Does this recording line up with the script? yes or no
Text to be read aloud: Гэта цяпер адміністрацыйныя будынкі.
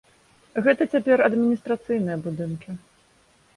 yes